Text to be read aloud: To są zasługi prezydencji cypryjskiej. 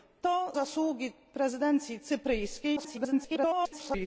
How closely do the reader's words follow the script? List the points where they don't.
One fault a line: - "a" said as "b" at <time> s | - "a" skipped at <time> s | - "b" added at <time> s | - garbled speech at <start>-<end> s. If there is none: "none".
- "są" skipped at 0.5 s
- garbled speech at 2.8-4.1 s